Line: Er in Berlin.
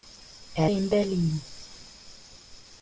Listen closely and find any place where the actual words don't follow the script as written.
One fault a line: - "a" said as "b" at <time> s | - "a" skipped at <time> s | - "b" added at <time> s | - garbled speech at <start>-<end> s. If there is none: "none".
none